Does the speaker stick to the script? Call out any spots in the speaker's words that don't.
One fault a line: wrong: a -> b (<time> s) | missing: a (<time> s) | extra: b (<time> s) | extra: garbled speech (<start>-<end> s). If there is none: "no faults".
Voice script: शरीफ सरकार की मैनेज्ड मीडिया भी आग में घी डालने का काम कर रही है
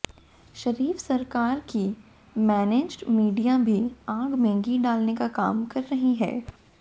no faults